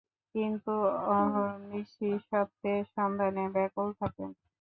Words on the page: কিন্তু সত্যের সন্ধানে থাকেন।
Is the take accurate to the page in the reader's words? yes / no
no